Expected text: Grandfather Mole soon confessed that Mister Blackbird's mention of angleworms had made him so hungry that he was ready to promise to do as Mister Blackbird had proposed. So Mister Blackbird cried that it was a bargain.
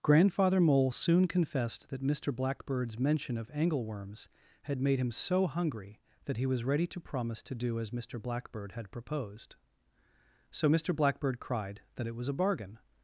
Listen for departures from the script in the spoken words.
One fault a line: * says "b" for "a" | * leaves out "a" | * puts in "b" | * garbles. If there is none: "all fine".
all fine